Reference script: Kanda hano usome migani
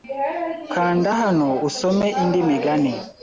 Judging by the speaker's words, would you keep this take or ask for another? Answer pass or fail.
fail